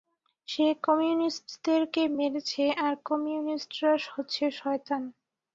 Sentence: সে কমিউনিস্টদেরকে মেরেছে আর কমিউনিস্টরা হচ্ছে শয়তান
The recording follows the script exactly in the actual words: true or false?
true